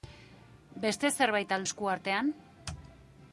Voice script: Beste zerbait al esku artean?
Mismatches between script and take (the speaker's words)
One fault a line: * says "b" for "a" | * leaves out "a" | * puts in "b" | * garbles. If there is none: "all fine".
all fine